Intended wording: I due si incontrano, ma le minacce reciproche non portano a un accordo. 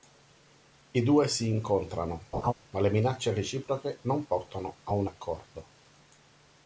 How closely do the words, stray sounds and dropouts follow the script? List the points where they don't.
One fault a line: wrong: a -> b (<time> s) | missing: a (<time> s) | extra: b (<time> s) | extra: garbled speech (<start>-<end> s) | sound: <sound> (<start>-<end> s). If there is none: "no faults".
sound: laugh (2.3-2.5 s)